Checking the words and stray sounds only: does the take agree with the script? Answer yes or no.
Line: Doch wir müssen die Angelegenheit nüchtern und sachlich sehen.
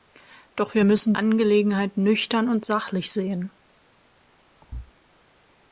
no